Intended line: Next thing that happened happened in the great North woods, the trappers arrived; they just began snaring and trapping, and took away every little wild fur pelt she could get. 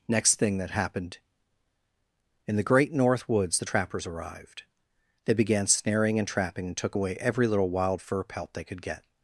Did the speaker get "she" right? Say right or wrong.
wrong